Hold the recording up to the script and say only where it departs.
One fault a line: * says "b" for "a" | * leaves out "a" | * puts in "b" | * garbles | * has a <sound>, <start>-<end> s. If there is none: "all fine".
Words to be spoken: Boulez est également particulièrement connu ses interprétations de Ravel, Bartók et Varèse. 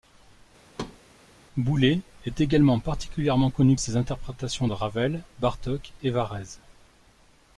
* has a thud, 0.7-1.0 s